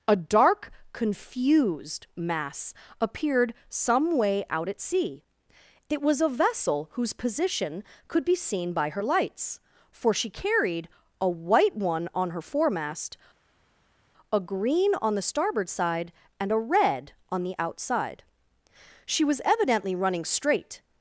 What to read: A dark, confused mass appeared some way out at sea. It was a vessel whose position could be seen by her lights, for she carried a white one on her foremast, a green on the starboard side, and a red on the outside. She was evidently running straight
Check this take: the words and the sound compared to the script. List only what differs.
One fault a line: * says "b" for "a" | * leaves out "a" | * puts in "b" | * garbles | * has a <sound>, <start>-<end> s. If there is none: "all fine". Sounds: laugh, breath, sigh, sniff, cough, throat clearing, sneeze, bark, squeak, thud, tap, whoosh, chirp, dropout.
all fine